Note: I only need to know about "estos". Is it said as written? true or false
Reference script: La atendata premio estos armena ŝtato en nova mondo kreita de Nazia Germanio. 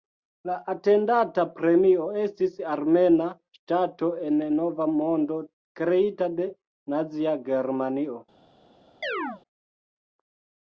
false